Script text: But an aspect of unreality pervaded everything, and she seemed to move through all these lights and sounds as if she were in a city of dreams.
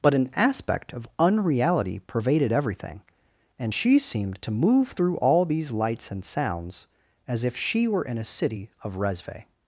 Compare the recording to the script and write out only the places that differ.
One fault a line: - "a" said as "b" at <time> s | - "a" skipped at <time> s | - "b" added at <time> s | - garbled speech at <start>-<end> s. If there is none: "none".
- "dreams" said as "resve" at 9.0 s